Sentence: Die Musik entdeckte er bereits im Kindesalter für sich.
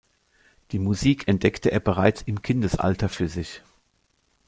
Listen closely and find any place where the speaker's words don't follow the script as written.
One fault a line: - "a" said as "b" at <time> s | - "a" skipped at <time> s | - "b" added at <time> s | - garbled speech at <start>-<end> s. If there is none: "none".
none